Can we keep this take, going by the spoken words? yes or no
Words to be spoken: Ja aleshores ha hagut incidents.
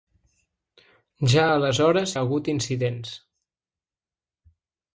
yes